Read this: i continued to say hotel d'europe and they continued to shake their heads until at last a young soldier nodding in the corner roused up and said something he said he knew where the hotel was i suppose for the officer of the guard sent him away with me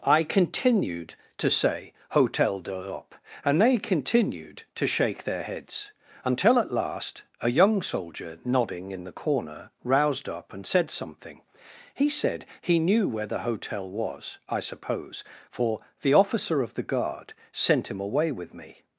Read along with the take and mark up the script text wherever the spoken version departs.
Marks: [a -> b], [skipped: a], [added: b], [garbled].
i continued to say hotel d'europe and they continued to shake their heads until at last a young soldier nodding in the corner roused up and said something he said he knew where the hotel was i suppose for the officer of the guard sent him away with me